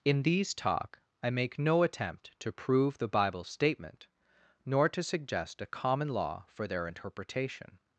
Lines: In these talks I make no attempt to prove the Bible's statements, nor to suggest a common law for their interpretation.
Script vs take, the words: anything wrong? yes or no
yes